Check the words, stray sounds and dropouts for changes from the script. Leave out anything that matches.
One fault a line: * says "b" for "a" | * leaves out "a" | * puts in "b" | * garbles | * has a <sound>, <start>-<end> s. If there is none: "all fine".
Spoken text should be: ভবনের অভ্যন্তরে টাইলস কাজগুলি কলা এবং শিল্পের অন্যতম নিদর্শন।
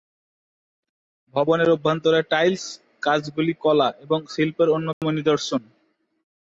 * has a dropout, 4.9-5.0 s